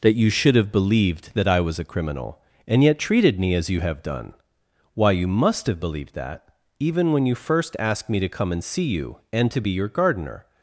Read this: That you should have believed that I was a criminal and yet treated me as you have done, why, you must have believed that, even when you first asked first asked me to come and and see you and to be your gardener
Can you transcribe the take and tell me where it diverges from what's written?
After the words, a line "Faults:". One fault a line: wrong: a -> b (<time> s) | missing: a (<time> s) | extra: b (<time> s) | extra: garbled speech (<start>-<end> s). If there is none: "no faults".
That you should have believed that I was a criminal and yet treated me as you have done, why, you must have believed that, even when you first asked me to come and see you and to be your gardener
Faults:
missing: first asked (8.1 s)
missing: and (8.6 s)